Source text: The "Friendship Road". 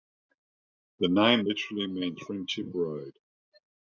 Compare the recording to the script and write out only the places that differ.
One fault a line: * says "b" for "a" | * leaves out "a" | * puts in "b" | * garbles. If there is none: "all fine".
* puts in "name literally means"